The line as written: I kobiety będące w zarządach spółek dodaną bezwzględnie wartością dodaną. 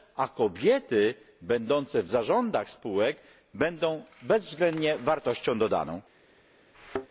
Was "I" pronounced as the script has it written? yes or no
no